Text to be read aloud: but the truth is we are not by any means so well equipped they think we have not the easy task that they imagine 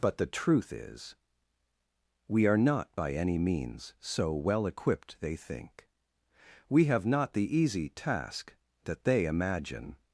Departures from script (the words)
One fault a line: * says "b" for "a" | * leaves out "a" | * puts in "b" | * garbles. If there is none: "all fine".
all fine